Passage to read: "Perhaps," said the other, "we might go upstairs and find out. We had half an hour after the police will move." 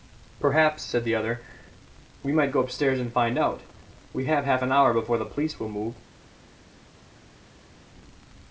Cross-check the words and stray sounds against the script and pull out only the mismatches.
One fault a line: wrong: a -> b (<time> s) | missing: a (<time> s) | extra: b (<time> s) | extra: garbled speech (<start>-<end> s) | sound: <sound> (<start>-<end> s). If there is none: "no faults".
wrong: had -> have (4.2 s)
wrong: after -> before (4.9 s)